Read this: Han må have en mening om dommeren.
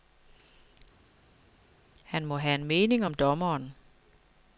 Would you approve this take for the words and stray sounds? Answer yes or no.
yes